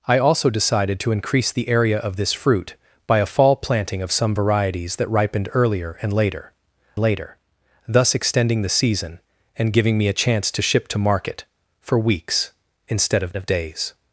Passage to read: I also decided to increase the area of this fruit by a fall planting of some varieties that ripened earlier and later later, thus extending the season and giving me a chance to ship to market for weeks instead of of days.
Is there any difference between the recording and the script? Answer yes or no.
no